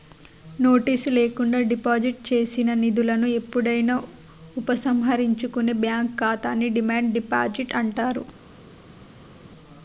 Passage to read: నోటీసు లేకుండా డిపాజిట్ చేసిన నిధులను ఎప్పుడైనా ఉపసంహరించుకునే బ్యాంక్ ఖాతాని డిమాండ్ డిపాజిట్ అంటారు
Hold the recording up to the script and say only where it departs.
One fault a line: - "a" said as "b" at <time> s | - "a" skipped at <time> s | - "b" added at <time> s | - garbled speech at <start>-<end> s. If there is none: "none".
none